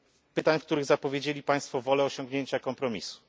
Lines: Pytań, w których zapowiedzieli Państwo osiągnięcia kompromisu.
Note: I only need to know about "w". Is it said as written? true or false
true